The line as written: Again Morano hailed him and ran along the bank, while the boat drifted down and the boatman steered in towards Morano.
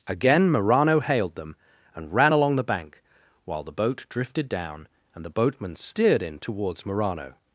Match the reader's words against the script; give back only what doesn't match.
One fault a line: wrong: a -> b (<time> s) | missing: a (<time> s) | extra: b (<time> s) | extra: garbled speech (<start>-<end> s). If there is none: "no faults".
wrong: him -> them (1.4 s)